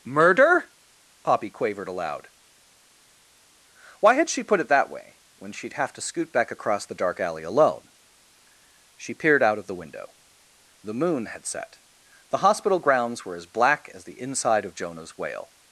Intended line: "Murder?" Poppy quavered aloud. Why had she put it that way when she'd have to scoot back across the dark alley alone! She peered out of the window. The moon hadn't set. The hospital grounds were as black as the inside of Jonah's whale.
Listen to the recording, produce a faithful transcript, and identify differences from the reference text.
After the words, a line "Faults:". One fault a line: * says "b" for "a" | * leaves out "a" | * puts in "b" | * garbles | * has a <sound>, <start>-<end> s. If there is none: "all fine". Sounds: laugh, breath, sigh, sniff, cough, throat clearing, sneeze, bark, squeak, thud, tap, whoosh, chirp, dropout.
"Murder?" Poppy quavered aloud. Why had she put it that way when she'd have to scoot back across the dark alley alone! She peered out of the window. The moon had set. The hospital grounds were as black as the inside of Jonah's whale.
Faults:
* says "had" for "hadn't"